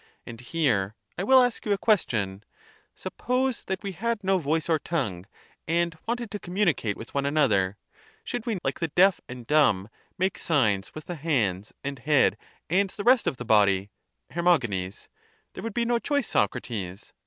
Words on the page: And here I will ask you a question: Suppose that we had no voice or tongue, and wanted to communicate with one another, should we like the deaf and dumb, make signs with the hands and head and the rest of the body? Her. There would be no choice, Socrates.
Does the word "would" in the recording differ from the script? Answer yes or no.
no